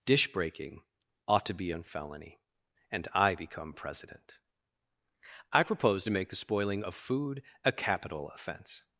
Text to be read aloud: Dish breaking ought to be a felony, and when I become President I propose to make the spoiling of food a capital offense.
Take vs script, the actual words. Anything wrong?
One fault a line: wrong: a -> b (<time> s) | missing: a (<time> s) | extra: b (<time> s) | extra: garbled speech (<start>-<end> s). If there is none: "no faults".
missing: when (3.1 s)